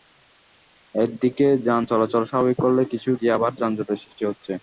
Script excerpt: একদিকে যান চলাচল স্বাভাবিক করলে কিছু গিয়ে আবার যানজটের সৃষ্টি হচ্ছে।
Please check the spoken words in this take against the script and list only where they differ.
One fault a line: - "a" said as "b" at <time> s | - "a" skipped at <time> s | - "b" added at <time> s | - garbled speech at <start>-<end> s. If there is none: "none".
none